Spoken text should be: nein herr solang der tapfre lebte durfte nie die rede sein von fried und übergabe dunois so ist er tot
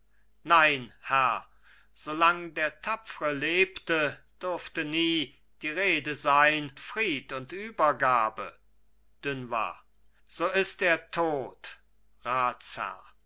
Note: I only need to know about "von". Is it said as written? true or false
false